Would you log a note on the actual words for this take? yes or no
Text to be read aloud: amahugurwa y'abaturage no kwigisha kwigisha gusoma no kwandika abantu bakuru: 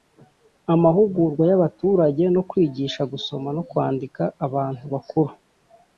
yes